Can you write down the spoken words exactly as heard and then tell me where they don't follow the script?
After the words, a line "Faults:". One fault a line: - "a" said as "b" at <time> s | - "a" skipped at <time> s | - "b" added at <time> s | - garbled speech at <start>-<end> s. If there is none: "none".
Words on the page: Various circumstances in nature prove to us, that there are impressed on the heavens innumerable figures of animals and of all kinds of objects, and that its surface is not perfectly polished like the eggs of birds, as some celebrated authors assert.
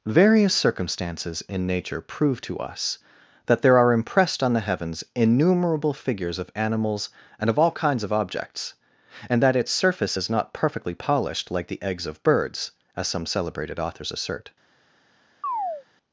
Various circumstances in nature prove to us, that there are impressed on the heavens innumerable figures of animals and of all kinds of objects, and that its surface is not perfectly polished like the eggs of birds, as some celebrated authors assert.
Faults:
none